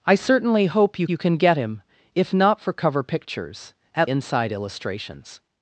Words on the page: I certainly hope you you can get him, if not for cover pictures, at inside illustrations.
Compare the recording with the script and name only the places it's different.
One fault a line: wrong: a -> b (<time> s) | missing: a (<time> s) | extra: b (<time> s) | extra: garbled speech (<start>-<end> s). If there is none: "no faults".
no faults